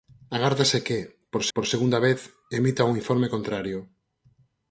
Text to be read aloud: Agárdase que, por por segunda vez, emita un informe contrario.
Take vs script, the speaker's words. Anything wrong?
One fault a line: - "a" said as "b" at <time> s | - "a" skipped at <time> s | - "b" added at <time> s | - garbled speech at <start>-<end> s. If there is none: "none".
none